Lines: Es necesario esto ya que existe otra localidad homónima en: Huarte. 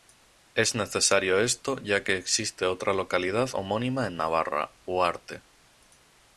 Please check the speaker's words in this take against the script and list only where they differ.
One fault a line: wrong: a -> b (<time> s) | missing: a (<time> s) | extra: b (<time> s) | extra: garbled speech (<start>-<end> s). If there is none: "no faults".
extra: Navarra (4.2 s)